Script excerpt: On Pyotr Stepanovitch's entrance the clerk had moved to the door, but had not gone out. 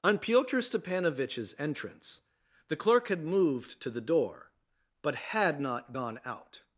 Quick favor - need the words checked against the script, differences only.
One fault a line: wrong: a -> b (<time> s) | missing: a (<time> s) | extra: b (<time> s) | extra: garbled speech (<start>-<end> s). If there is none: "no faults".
no faults